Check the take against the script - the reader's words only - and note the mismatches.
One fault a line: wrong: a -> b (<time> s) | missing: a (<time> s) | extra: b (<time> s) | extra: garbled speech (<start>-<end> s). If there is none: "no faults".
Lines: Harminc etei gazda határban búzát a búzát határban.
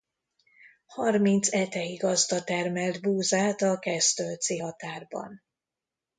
wrong: határban -> termelt (2.4 s)
wrong: búzát -> kesztölci (3.8 s)